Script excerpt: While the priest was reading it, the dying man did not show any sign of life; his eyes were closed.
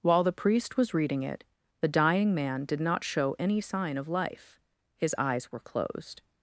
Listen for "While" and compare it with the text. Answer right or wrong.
right